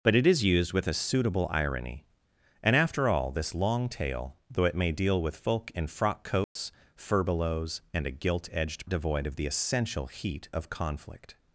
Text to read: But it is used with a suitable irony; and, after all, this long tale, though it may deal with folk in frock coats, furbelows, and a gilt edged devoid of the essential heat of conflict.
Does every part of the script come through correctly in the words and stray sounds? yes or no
no